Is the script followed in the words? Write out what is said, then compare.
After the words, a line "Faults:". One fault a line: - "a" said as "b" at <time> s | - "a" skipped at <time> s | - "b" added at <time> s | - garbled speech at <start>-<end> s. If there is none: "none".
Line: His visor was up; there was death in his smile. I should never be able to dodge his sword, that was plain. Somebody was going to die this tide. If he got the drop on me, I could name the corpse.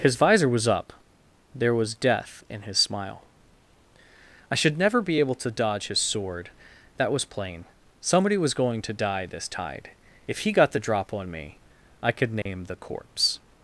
His visor was up; there was death in his smile. I should never be able to dodge his sword, that was plain. Somebody was going to die this tide. If he got the drop on me, I could name the corpse.
Faults:
none